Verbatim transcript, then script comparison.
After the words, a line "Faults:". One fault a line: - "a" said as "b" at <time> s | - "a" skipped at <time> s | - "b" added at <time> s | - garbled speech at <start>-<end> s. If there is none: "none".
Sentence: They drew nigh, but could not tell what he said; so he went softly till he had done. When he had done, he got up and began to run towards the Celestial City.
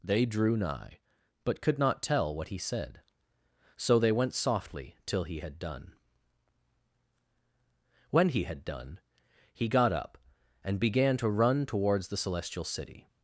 They drew nigh, but could not tell what he said; so they went softly till he had done. When he had done, he got up and began to run towards the Celestial City.
Faults:
- "he" said as "they" at 4.0 s